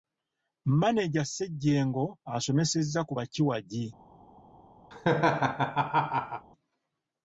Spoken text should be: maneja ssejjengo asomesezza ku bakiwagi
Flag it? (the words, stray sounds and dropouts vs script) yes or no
yes